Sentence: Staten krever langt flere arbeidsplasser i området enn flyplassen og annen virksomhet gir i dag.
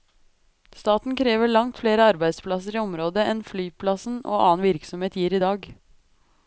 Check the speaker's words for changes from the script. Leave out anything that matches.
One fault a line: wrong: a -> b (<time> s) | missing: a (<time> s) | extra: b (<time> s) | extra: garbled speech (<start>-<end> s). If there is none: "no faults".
no faults